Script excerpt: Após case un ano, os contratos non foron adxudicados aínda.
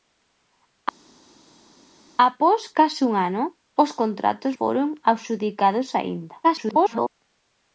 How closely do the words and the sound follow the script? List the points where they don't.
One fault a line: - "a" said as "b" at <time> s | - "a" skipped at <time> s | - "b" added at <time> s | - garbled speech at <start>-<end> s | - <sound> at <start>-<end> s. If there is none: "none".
- "non" skipped at 4.5 s
- garbled speech at 6.4-7.1 s